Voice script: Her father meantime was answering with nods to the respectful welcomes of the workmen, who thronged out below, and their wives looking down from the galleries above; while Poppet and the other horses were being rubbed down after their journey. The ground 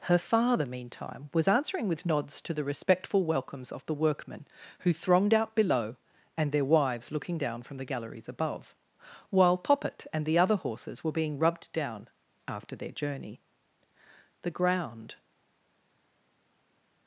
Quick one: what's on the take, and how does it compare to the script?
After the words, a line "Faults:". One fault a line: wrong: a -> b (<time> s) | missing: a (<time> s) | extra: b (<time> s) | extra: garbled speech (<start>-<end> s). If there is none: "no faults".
Her father meantime was answering with nods to the respectful welcomes of the workmen, who thronged out below, and their wives looking down from the galleries above; while Poppet and the other horses were being rubbed down after their journey. The ground
Faults:
no faults